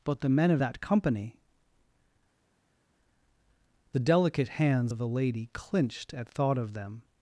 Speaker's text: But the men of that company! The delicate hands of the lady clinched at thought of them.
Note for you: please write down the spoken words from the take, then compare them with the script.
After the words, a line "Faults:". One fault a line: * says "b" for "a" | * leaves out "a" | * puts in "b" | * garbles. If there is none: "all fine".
But the men of that company! The delicate hands of the lady clinched at thought of them.
Faults:
all fine